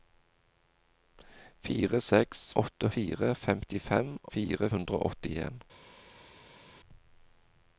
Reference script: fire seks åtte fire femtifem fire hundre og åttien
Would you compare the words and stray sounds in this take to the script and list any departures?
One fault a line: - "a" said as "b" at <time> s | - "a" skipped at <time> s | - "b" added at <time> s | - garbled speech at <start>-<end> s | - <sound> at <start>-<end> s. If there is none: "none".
none